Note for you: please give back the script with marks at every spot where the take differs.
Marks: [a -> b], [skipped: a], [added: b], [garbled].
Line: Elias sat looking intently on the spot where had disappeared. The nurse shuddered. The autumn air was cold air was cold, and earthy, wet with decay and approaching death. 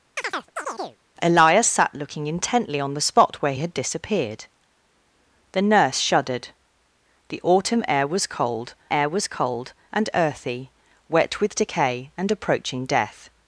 Elias sat looking intently on the spot where had disappeared. The nurse shuddered. The autumn air was cold air was cold, and earthy, wet with decay and approaching death.